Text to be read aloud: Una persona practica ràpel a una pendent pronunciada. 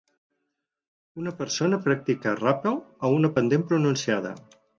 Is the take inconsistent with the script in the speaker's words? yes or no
no